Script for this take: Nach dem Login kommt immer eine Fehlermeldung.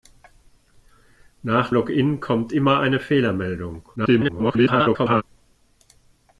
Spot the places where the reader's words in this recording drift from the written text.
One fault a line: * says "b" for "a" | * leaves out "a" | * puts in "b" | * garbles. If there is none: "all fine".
* leaves out "dem"
* garbles